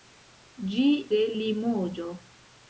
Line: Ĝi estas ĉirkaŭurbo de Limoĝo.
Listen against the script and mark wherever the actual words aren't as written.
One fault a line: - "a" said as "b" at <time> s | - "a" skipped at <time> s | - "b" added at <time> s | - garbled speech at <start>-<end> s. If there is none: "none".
- "estas ĉirkaŭurbo" skipped at 0.8 s